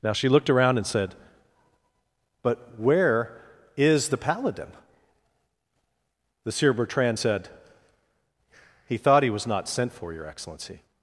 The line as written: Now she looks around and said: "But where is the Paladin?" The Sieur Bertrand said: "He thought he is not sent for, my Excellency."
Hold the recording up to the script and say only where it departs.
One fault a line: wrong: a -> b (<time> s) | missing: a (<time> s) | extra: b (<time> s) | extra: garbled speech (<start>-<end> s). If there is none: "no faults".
wrong: looks -> looked (0.3 s)
wrong: is -> was (9.3 s)
wrong: my -> your (10.1 s)